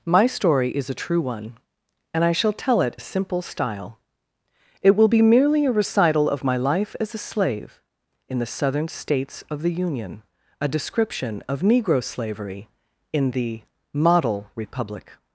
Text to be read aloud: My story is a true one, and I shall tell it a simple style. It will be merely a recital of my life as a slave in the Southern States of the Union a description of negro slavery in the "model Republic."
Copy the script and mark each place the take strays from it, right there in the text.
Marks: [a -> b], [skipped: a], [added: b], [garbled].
My story is a true one, and I shall tell it a simple style. It will be merely a recital of my life as a slave in the Southern States of the Union a description of negro slavery in the "model Republic."